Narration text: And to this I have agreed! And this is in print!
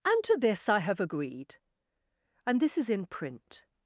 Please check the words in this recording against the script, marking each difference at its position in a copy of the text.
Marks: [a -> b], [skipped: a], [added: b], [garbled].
And to this I have agreed! And this is in print!